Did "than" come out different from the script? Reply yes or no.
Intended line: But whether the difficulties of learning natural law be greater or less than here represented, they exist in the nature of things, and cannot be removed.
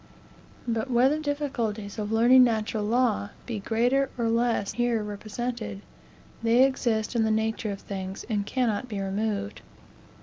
yes